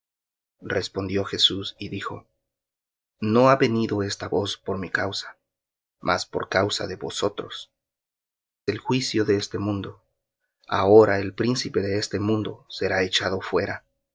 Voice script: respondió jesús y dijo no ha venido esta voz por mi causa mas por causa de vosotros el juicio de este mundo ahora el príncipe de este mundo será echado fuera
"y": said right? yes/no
yes